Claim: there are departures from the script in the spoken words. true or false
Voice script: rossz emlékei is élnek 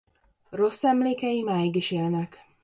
true